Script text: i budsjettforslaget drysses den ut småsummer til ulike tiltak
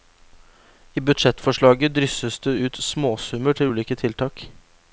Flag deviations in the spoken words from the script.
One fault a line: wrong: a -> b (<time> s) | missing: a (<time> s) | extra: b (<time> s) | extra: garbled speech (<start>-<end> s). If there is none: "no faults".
wrong: den -> det (2.4 s)